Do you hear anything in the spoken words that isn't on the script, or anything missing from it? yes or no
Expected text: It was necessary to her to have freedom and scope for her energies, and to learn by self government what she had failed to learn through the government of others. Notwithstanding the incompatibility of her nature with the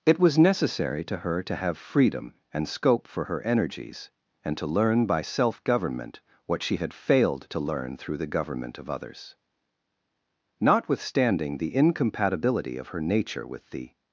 no